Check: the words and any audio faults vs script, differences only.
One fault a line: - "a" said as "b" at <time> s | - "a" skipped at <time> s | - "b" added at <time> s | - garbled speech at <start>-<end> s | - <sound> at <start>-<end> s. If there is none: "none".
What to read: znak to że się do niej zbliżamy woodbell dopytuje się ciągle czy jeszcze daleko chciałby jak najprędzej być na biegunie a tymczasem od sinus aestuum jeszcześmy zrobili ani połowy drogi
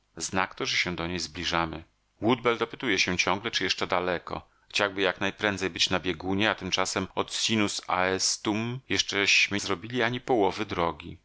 none